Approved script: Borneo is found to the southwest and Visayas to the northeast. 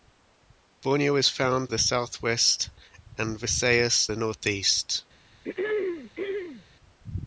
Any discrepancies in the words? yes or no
yes